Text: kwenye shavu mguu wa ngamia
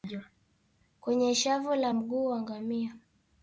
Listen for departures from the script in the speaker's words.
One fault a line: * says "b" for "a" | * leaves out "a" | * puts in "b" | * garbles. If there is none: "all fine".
* puts in "la"